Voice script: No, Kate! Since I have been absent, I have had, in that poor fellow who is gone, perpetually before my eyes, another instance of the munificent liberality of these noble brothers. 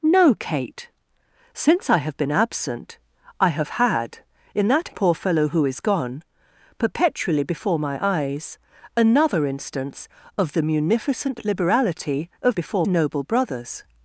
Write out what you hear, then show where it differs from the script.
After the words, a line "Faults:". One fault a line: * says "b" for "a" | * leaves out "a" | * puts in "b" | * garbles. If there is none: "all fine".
No, Kate! Since I have been absent, I have had, in that poor fellow who is gone, perpetually before my eyes, another instance of the munificent liberality of before noble brothers.
Faults:
* says "before" for "these"